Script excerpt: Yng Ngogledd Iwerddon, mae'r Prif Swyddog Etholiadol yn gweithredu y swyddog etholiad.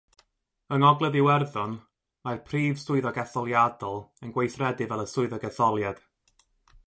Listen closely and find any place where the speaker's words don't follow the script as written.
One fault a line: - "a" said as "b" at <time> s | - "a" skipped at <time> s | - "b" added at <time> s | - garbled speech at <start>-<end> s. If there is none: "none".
- "fel" added at 4.9 s